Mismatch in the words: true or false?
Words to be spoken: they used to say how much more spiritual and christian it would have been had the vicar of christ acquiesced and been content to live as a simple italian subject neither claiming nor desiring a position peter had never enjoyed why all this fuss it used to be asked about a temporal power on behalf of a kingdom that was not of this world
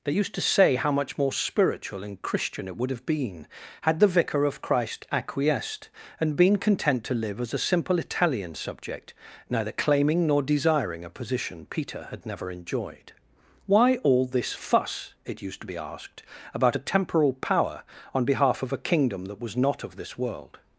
false